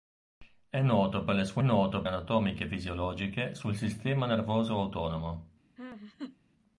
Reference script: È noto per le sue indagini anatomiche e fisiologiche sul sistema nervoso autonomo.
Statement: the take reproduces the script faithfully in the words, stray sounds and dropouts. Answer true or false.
false